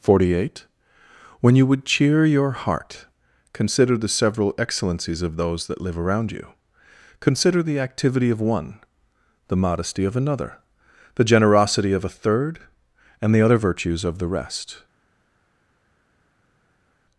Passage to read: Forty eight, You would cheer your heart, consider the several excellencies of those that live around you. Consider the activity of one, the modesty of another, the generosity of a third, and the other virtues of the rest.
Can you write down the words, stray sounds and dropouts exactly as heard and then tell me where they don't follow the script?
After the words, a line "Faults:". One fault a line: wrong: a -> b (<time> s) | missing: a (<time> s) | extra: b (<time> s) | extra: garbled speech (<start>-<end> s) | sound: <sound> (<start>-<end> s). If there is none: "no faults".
Forty eight, When you would cheer your heart, consider the several excellencies of those that live around you. Consider the activity of one, the modesty of another, the generosity of a third, and the other virtues of the rest.
Faults:
extra: When (1.4 s)